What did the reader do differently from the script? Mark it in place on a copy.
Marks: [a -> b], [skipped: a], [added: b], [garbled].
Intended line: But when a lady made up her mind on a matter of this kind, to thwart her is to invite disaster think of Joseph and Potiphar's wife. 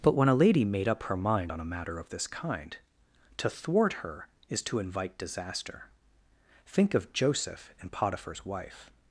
But when a lady made up her mind on a matter of this kind, to thwart her is to invite disaster think of Joseph and Potiphar's wife.